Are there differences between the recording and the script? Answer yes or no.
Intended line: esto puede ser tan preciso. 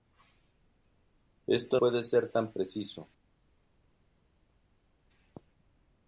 no